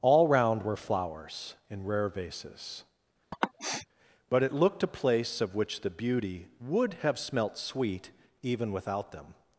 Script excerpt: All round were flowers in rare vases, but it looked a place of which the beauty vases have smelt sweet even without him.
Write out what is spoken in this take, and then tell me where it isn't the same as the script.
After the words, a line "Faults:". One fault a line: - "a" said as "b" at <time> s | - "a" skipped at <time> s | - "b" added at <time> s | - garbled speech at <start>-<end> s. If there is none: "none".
All round were flowers in rare vases, but it looked a place of which the beauty would have smelt sweet even without them.
Faults:
- "vases" said as "would" at 6.6 s
- "him" said as "them" at 9.1 s